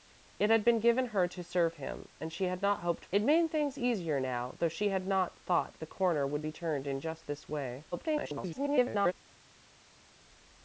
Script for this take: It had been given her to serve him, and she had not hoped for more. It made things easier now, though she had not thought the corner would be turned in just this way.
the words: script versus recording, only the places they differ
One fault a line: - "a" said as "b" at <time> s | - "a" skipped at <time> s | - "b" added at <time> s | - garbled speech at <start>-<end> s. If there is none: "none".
- "for more" skipped at 3.0 s
- garbled speech at 7.9-9.1 s